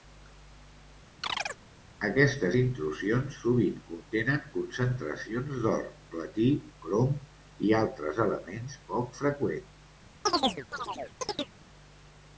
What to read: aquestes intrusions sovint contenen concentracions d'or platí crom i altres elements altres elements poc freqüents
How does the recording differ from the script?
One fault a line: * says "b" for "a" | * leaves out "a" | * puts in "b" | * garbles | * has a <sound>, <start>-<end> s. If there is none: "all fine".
* has a chirp, 1.2-1.6 s
* leaves out "altres elements"
* has a chirp, 10.3-11.6 s